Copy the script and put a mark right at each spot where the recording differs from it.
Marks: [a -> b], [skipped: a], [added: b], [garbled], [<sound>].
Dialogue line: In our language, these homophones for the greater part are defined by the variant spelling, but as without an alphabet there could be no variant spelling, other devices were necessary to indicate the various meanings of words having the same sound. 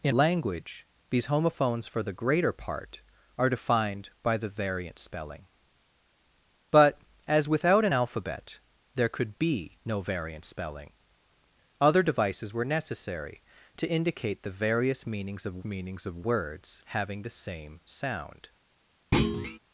In [skipped: our] language, these homophones for the greater part are defined by the variant spelling, but as without an alphabet there could be no variant spelling, other devices were necessary to indicate the various meanings of [added: meanings of] words having the same sound. [thud]